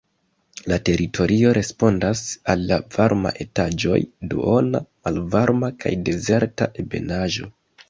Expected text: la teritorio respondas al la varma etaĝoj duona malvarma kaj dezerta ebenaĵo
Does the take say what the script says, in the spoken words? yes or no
yes